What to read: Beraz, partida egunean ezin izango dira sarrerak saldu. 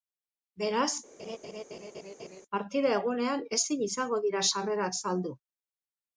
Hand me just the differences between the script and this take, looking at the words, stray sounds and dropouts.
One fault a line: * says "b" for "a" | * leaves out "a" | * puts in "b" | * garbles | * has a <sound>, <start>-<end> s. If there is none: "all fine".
* has a laugh, 1.2-2.4 s